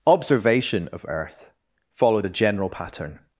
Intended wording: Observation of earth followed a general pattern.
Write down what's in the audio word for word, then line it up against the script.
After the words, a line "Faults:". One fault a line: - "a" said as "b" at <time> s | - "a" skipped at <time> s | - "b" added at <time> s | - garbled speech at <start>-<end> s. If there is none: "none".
Observation of earth followed a general pattern.
Faults:
none